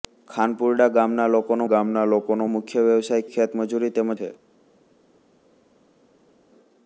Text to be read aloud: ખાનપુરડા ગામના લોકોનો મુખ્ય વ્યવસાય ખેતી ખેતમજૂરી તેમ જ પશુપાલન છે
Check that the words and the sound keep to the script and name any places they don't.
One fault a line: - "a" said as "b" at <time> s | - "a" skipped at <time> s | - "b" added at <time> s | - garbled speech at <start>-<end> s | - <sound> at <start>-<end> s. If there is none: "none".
- "ગામના લોકોનો" added at 1.6 s
- "ખેતી" skipped at 3.3 s
- "જ પશુપાલન" skipped at 4.1 s